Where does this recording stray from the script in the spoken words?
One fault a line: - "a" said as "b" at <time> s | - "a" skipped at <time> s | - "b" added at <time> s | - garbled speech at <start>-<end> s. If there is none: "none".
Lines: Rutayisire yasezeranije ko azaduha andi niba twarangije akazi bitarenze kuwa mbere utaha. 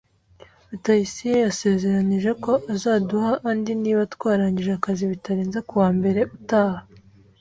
none